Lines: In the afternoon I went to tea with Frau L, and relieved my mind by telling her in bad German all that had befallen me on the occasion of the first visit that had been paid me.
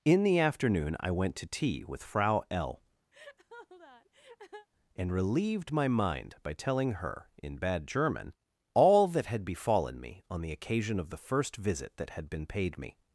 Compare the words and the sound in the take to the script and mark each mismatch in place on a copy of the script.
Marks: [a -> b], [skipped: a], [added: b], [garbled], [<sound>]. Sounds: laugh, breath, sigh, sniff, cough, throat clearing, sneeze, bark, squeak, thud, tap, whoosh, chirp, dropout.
In the afternoon I went to tea with Frau L, [laugh] and relieved my mind by telling her in bad German all that had befallen me on the occasion of the first visit that had been paid me.